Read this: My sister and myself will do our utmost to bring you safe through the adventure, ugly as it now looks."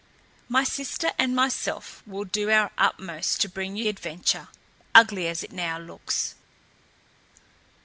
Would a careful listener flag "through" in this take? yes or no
yes